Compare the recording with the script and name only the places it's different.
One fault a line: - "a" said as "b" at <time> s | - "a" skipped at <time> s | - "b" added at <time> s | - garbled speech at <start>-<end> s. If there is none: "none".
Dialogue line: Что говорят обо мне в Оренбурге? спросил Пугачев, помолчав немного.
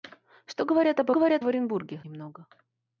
- "мне" said as "говорят" at 1.1 s
- "спросил Пугачев помолчав" skipped at 2.0 s